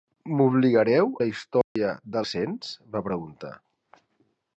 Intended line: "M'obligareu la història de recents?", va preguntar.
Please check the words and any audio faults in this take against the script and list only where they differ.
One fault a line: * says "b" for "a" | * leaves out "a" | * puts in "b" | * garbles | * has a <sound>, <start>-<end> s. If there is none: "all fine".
* has a dropout, 1.6-1.8 s